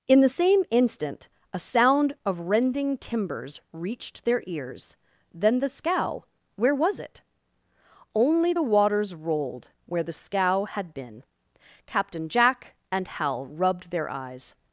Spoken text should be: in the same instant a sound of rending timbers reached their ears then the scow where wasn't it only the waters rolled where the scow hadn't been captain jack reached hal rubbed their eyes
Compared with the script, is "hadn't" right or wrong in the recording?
wrong